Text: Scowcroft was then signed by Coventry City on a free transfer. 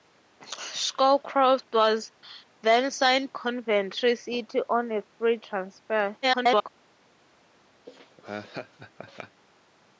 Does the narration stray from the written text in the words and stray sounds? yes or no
yes